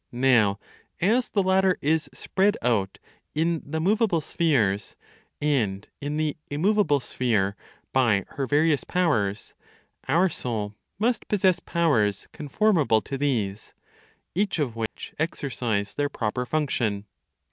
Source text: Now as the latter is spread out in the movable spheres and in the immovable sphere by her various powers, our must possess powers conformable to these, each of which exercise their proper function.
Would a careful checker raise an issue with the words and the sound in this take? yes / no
yes